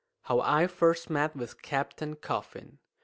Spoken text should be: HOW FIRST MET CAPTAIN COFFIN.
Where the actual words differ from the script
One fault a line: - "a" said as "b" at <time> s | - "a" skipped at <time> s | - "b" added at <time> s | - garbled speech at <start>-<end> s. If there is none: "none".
- "I" added at 0.4 s
- "WITH" added at 1.4 s